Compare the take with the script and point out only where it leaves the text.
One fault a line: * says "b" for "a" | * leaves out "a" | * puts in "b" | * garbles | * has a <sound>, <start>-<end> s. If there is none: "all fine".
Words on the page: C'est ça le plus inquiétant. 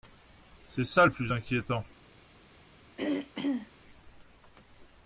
* has a throat clearing, 3.0-3.7 s